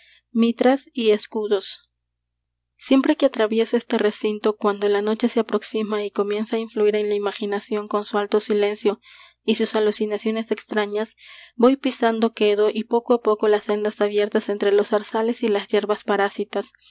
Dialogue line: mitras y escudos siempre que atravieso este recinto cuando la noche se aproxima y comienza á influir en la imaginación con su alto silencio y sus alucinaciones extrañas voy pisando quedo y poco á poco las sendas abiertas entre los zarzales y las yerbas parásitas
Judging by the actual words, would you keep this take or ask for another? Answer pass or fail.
pass